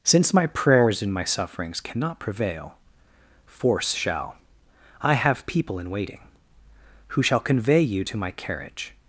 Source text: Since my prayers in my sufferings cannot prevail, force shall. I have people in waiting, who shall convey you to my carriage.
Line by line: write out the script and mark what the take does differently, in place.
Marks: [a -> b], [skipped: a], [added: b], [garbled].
Since my prayers in my sufferings cannot prevail, force shall. I have people in waiting, who shall convey you to my carriage.